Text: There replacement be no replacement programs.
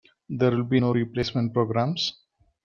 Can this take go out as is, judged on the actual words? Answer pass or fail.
fail